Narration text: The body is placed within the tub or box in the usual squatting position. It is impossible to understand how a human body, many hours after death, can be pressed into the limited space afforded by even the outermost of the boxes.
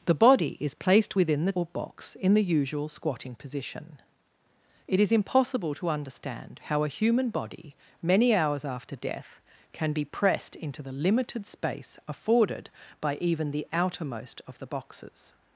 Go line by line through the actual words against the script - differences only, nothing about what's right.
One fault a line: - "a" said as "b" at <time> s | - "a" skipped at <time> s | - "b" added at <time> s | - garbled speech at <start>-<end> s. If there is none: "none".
- "tub" skipped at 1.6 s